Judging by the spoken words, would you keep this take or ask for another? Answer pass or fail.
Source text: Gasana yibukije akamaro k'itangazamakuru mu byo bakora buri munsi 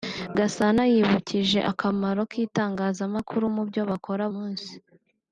fail